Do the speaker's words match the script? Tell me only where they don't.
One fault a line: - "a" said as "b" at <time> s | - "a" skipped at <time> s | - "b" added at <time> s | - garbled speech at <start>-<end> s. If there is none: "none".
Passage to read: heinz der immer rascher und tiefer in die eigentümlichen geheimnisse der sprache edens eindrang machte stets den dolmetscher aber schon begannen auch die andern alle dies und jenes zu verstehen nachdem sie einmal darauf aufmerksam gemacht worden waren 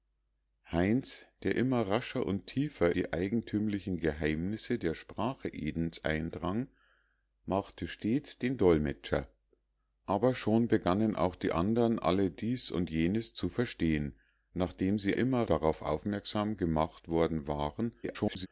- "in" skipped at 3.0 s
- "einmal" said as "immer" at 15.2 s
- garbled speech at 18.0-18.5 s